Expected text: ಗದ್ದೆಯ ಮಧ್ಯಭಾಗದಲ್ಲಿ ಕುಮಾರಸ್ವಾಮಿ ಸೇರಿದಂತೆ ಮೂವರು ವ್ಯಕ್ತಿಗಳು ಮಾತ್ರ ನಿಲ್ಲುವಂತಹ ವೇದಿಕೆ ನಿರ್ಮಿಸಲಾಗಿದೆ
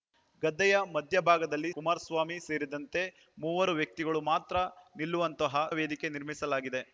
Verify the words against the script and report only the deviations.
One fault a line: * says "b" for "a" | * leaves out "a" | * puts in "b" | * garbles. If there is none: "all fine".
all fine